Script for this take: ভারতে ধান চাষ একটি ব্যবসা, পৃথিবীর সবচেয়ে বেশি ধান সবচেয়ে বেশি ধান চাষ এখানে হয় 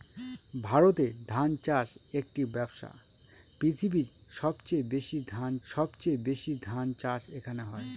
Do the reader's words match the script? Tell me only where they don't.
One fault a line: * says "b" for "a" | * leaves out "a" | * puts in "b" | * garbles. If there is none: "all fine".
all fine